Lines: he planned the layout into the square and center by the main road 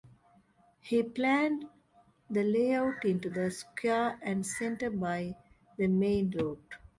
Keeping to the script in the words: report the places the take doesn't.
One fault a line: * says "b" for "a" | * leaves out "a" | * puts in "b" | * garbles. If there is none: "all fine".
all fine